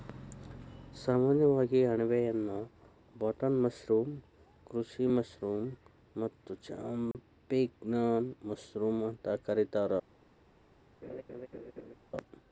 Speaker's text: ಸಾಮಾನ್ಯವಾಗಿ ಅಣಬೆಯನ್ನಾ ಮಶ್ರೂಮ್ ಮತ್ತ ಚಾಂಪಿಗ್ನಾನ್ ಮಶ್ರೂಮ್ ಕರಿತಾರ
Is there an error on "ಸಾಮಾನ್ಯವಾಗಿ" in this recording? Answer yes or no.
no